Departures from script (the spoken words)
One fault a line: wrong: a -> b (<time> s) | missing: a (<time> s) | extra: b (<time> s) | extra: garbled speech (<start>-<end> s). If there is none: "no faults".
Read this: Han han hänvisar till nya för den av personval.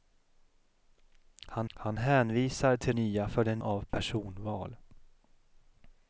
no faults